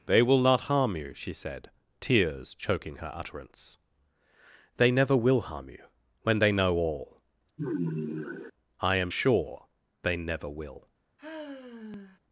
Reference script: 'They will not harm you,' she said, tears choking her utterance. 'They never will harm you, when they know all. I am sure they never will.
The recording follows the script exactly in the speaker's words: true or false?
true